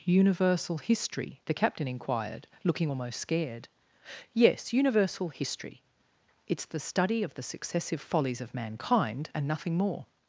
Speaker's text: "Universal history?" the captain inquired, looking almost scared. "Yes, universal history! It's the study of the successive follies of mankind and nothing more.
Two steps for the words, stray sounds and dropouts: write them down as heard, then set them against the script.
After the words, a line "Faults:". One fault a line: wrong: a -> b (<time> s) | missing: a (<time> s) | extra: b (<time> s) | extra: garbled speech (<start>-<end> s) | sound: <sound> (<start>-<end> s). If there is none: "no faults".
"Universal history?" the captain inquired, looking almost scared. "Yes, universal history! It's the study of the successive follies of mankind and nothing more.
Faults:
no faults